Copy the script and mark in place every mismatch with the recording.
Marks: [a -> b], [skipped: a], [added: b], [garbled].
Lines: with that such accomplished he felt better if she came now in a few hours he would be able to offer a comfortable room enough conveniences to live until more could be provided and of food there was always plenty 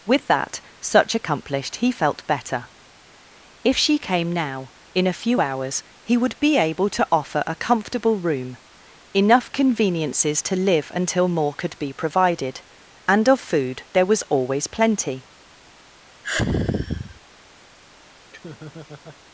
with that such accomplished he felt better if she came now in a few hours he would be able to offer a comfortable room enough conveniences to live until more could be provided and of food there was always plenty